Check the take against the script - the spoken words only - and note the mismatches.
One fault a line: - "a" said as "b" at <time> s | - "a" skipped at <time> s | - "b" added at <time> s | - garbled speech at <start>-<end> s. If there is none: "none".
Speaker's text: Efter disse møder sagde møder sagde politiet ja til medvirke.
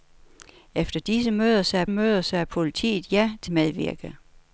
none